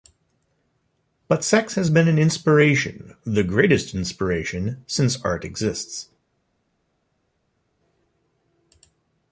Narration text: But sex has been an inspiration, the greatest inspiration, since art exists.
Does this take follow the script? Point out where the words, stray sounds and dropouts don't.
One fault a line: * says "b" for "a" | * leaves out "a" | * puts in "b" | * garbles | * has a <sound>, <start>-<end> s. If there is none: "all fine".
all fine